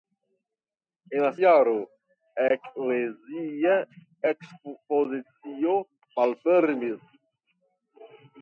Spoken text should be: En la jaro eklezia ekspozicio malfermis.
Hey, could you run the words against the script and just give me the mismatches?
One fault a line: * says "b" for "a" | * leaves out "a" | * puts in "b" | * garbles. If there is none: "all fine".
all fine